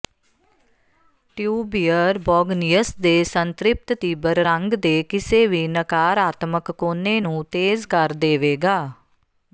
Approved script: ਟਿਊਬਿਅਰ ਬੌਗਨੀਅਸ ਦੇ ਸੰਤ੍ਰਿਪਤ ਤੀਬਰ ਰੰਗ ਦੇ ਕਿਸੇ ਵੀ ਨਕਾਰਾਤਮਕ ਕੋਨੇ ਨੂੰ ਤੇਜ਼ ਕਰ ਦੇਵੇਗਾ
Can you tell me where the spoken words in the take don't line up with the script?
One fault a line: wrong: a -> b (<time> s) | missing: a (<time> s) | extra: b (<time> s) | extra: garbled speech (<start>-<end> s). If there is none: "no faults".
no faults